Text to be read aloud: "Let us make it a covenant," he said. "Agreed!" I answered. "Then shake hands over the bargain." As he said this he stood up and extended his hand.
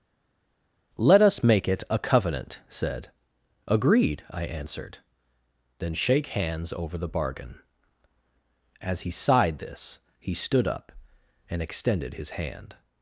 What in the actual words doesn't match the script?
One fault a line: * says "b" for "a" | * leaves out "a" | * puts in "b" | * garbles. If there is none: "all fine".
* leaves out "he"
* says "sighed" for "said"